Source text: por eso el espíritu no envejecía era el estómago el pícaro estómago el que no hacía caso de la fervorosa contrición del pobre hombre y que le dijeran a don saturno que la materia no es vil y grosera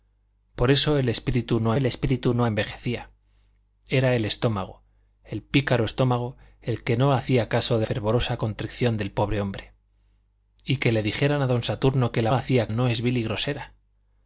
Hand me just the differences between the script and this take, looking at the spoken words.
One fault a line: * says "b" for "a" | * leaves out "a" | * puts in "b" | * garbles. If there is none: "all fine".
* puts in "el espíritu no"
* leaves out "la"
* says "hacía" for "materia"